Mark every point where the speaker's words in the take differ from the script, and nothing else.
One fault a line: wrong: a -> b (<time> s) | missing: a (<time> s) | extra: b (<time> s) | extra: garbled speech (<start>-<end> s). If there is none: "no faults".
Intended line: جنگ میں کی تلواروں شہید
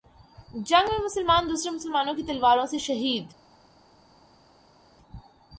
extra: مسلمان دوسرے مسلمانوں (1.1 s)
extra: سے (2.6 s)